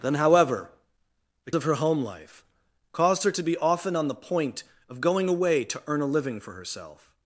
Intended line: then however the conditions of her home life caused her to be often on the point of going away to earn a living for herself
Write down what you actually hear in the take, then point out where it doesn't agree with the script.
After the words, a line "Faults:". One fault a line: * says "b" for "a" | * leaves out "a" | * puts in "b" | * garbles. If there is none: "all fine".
then however the of her home life caused her to be often on the point of going away to earn a living for herself
Faults:
* leaves out "conditions"